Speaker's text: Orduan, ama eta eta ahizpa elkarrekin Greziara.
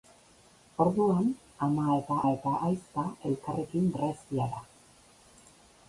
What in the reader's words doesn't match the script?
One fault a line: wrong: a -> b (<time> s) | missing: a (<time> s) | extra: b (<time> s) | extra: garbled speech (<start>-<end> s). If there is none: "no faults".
no faults